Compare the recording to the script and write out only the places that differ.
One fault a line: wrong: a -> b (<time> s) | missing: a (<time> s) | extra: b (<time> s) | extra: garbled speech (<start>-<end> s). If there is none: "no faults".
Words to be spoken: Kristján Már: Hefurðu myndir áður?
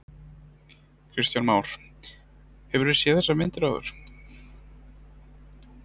extra: séð þessar (3.0 s)